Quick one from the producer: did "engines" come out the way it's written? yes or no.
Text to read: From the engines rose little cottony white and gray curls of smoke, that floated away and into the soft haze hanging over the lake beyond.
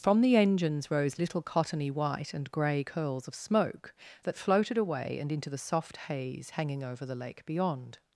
yes